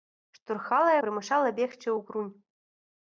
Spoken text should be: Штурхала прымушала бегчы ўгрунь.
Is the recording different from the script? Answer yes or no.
no